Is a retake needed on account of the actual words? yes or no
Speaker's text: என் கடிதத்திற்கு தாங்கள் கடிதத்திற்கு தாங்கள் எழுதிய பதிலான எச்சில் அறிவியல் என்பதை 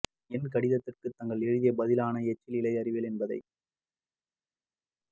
yes